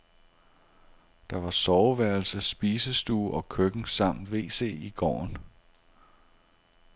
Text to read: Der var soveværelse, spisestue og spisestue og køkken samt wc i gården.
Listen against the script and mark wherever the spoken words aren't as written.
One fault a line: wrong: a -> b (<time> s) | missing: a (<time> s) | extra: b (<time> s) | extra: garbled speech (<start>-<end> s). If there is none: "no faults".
missing: spisestue og (3.5 s)